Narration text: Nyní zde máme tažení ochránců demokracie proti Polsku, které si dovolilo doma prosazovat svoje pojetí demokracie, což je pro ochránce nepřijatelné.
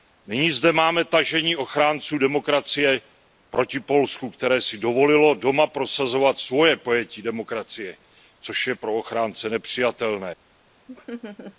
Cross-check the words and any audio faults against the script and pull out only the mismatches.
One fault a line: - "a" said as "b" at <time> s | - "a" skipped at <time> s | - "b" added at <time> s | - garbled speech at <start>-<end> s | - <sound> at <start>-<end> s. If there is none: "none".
- laugh at 10.9-11.6 s